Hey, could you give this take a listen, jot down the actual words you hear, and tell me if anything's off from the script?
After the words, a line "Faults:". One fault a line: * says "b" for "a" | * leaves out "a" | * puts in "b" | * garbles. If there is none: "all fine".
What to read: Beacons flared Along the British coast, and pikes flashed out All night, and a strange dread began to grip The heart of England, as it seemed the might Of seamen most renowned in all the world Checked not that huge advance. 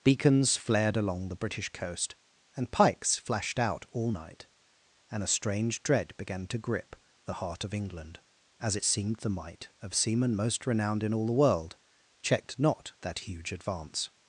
Beacons flared Along the British coast, and pikes flashed out All night, and a strange dread began to grip The heart of England, as it seemed the might Of seamen most renowned in all the world Checked not that huge advance.
Faults:
all fine